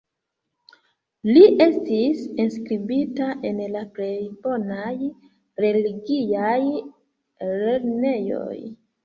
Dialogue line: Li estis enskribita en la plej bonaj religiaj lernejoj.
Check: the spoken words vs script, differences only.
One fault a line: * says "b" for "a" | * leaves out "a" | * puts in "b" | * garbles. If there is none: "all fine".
all fine